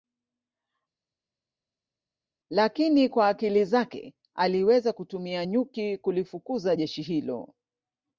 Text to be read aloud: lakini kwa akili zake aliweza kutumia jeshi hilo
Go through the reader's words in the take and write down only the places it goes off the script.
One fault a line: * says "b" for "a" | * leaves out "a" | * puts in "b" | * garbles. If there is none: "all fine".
* puts in "nyuki kulifukuza"